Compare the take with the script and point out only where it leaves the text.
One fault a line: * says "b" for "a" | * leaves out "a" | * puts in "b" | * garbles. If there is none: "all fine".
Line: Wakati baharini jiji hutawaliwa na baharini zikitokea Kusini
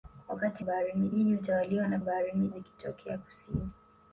all fine